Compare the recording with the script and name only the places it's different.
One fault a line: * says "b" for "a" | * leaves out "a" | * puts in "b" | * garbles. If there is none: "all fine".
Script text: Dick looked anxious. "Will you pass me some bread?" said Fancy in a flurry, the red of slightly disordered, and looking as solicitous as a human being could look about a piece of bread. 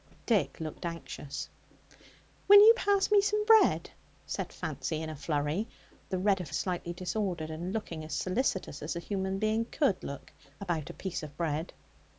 all fine